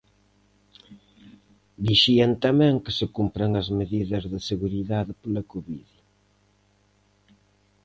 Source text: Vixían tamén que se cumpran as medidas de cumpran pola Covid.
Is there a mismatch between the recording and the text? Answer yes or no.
yes